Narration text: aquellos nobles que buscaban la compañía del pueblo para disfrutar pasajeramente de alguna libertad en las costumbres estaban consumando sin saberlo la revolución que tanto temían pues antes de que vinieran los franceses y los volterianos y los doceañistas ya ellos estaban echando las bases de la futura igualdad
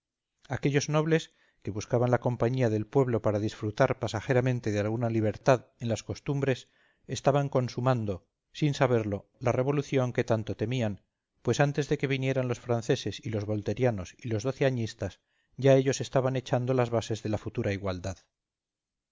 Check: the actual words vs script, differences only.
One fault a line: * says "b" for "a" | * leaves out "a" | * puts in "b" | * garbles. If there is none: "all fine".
all fine